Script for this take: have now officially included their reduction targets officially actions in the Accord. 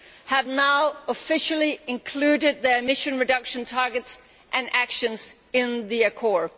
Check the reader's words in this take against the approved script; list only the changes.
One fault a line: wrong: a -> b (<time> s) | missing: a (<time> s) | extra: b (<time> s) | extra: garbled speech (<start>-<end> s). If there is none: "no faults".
extra: emission (2.8 s)
wrong: officially -> and (4.5 s)